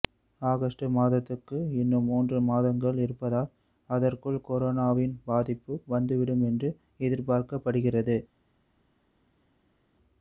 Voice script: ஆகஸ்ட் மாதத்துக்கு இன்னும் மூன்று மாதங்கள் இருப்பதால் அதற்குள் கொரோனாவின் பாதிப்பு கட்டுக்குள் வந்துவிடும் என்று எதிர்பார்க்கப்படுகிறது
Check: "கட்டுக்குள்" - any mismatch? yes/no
yes